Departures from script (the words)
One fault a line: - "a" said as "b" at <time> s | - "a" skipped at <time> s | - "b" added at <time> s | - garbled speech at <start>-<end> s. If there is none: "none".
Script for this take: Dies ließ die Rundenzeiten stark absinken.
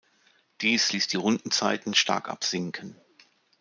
none